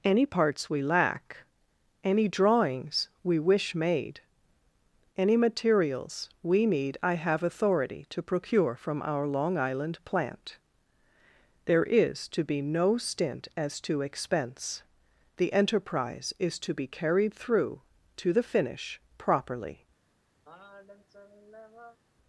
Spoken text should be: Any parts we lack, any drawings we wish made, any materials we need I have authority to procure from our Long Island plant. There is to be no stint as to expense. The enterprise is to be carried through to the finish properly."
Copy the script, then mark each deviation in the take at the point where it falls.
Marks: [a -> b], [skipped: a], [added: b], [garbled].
Any parts we lack, any drawings we wish made, any materials we need I have authority to procure from our Long Island plant. There is to be no stint as to expense. The enterprise is to be carried through to the finish properly."